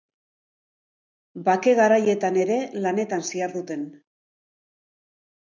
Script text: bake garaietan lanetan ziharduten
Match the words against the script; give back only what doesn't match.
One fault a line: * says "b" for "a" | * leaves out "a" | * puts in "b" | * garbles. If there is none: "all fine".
* puts in "ere"